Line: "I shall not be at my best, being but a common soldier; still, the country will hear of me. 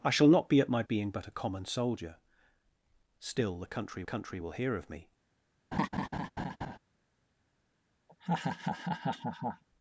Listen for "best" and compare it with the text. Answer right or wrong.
wrong